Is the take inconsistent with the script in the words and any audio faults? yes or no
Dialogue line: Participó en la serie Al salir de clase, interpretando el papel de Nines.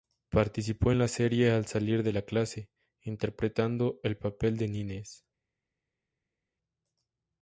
no